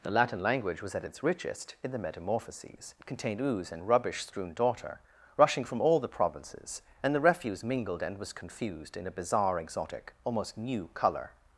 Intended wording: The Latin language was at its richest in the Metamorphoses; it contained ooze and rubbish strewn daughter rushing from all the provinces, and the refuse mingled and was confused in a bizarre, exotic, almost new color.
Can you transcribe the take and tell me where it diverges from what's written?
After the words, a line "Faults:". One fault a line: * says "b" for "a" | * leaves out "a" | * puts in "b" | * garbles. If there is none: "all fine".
The Latin language was at its richest in the Metamorphoses; it contained ooze and rubbish strewn daughter rushing from all the provinces, and the refuse mingled and was confused in a bizarre, exotic, almost new color.
Faults:
all fine